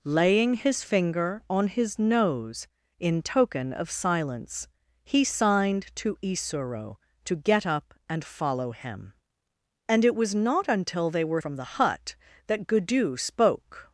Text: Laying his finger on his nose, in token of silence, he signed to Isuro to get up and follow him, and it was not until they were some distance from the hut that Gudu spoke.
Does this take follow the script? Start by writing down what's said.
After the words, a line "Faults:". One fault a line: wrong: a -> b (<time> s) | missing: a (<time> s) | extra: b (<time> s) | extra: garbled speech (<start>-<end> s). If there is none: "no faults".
Laying his finger on his nose, in token of silence, he signed to Isuro to get up and follow him, and it was not until they were from the hut that Gudu spoke.
Faults:
missing: some distance (11.4 s)